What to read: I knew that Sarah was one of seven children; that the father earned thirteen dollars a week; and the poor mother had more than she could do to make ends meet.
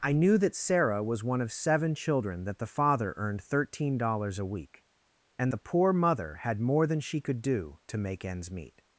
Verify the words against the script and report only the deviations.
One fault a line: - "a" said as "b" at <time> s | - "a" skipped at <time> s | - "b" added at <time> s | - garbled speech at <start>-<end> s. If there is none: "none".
none